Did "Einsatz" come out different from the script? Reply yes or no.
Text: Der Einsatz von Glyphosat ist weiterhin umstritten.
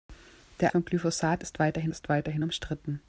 yes